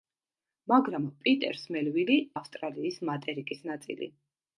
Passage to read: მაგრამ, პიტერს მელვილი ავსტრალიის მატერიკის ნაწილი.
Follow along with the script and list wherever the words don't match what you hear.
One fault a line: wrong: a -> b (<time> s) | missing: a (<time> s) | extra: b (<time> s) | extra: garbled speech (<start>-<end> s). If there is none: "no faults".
no faults